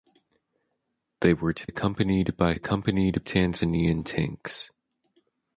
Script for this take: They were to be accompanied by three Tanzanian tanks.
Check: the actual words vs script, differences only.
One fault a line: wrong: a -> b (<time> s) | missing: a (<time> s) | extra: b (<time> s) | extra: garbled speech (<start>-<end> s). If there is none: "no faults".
missing: be (1.7 s)
wrong: three -> accompanied (2.5 s)